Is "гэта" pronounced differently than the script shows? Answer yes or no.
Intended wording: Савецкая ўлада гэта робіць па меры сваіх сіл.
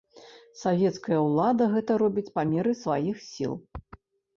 no